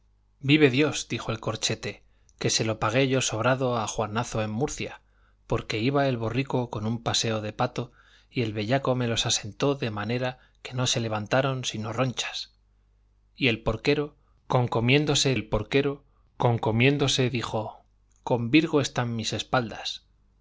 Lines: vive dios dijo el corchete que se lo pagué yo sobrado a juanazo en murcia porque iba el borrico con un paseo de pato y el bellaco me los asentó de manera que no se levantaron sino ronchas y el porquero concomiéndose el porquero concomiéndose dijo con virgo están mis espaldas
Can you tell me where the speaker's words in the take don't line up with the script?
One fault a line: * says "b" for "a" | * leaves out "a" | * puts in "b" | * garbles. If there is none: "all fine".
all fine